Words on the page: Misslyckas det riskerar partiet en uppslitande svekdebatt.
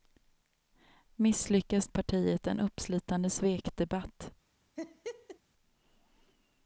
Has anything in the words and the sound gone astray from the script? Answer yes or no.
yes